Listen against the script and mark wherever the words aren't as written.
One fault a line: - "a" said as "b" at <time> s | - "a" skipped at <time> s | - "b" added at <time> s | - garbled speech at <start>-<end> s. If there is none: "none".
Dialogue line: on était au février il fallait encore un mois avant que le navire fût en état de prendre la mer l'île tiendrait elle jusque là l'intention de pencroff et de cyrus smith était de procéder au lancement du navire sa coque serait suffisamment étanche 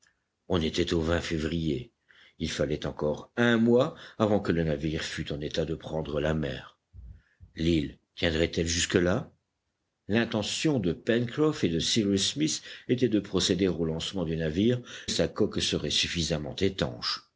none